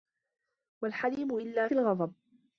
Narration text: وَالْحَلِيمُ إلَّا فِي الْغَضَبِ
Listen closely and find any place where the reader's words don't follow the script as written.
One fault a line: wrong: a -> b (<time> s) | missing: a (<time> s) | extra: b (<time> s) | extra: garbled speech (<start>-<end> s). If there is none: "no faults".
missing: فِي (1.7 s)